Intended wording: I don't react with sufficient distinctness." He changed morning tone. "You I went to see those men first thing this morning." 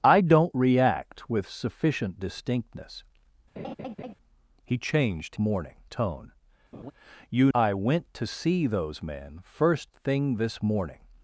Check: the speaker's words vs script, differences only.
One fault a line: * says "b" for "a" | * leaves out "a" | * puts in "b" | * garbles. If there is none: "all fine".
all fine